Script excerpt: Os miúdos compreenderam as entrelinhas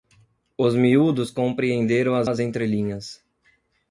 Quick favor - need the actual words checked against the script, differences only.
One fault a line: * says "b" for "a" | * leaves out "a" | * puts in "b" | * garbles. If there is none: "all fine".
* puts in "as"